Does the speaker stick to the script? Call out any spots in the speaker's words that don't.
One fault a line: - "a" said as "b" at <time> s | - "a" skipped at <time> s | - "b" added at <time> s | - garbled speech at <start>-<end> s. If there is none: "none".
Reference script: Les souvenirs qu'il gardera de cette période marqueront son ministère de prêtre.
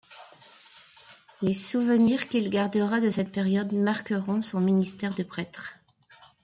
none